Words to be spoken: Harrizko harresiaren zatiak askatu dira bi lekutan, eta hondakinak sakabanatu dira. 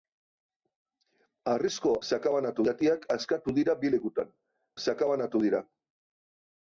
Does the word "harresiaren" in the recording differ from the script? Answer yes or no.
yes